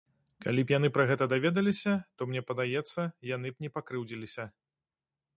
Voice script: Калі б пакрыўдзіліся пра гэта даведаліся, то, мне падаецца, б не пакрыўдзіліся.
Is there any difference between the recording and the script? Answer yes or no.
yes